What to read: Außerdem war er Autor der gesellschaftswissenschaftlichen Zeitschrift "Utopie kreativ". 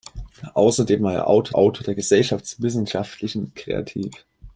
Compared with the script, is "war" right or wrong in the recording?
right